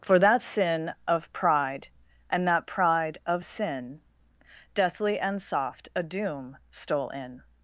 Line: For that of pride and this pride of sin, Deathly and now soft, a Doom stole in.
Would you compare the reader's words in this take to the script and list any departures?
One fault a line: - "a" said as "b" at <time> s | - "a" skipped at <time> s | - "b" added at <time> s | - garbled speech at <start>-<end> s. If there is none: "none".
- "sin" added at 0.4 s
- "this" said as "that" at 2.5 s
- "now" skipped at 5.4 s